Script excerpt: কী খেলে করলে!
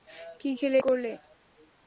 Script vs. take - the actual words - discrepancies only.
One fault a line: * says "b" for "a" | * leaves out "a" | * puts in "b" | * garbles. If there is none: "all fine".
all fine